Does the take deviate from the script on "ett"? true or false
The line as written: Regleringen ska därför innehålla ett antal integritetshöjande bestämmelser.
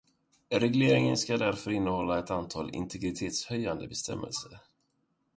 false